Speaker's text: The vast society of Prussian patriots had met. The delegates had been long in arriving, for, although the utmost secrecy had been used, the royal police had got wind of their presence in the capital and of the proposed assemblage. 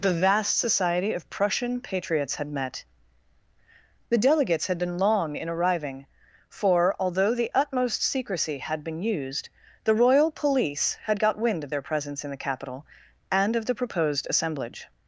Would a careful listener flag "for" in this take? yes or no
no